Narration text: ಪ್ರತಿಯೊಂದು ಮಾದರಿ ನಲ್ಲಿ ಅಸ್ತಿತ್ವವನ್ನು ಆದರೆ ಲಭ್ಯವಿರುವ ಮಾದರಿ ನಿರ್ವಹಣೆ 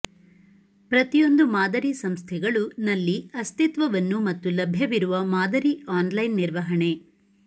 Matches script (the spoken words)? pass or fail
fail